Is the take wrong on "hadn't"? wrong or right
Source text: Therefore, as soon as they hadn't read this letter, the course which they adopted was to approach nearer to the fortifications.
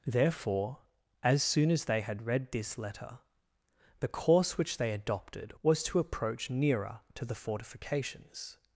wrong